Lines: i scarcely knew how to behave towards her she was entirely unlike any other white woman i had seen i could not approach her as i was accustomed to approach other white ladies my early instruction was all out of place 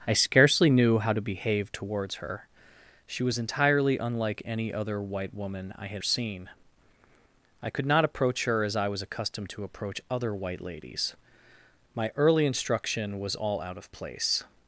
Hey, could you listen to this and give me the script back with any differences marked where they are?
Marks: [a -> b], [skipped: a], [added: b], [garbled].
i scarcely knew how to behave towards her she was entirely unlike any other white woman i had seen i could not approach her as i was accustomed to approach other white ladies my early instruction was all out of place